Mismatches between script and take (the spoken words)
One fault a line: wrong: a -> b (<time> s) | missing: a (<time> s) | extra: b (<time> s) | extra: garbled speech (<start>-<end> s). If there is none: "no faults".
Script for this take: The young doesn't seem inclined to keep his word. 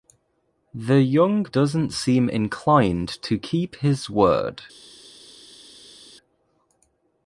no faults